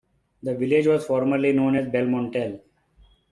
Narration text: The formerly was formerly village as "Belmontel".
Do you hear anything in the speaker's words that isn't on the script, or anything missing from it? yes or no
yes